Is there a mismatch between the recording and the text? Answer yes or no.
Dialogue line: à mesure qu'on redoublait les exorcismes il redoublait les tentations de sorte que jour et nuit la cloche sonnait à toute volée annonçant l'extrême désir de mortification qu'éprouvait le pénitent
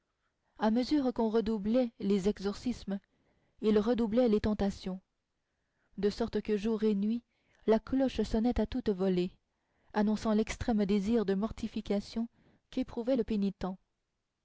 no